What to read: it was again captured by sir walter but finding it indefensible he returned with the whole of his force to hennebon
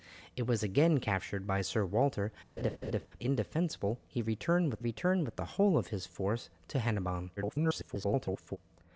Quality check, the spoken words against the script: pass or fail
fail